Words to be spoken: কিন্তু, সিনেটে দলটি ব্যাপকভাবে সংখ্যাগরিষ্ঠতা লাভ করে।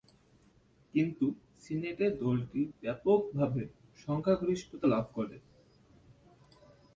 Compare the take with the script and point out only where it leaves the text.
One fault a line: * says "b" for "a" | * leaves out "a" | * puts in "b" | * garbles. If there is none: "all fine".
all fine